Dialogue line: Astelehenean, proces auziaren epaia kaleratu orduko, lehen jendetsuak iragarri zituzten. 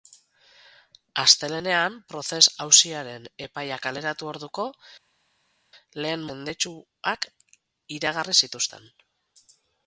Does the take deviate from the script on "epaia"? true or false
false